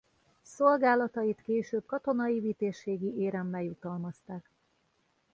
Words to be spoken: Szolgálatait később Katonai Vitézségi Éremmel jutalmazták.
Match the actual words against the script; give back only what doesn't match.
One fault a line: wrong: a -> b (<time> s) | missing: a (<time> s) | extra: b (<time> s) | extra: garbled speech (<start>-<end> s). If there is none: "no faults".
no faults